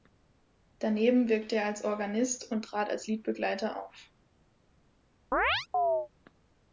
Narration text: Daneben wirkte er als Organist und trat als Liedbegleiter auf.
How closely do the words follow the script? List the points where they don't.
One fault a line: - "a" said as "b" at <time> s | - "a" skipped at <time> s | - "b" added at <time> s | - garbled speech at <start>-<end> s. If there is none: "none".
none